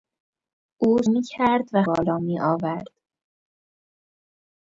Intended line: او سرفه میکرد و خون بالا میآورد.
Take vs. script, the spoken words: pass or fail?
fail